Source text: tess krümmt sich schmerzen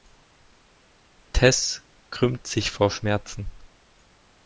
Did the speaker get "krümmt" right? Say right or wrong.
right